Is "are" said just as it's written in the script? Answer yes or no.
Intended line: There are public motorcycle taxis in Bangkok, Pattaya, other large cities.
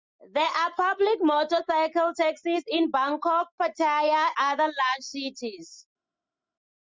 yes